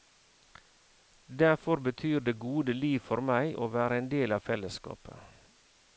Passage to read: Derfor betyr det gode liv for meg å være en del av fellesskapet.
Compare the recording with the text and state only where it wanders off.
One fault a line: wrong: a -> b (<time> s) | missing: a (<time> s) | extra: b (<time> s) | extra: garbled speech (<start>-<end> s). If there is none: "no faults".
no faults